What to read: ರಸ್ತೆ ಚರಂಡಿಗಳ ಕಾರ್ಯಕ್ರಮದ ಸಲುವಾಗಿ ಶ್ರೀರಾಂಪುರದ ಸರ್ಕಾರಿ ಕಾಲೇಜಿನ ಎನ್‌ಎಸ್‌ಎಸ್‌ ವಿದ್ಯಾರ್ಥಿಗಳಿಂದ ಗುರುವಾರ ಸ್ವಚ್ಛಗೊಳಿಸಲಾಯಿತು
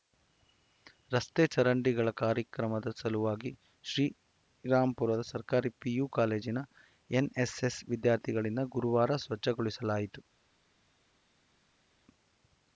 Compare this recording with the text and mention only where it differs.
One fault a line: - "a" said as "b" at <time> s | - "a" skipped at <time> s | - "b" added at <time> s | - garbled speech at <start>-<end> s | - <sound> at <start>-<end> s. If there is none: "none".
- "ಪಿಯು" added at 5.8 s